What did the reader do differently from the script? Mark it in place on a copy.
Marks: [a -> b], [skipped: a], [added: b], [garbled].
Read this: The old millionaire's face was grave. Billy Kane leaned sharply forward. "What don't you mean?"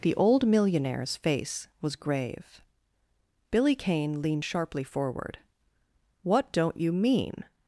The old millionaire's face was grave. Billy Kane leaned sharply forward. "What don't you mean?"